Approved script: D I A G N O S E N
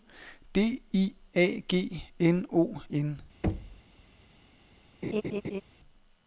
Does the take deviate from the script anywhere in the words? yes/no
yes